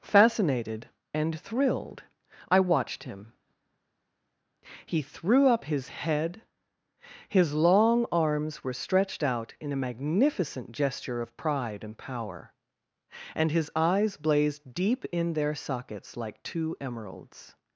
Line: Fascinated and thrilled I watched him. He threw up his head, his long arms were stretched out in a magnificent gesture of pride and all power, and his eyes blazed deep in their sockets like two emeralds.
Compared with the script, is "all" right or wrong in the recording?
wrong